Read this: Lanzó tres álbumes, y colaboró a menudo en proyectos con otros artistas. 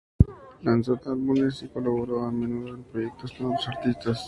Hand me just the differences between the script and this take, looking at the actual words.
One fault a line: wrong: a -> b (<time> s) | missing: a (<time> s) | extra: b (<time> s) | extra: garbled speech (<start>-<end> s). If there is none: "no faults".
missing: tres (1.0 s)